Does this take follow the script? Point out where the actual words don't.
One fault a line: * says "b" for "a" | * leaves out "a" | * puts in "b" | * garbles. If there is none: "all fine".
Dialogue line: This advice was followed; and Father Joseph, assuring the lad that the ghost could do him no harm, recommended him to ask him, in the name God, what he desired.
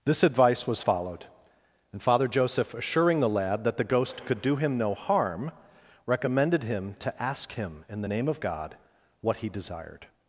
* puts in "of"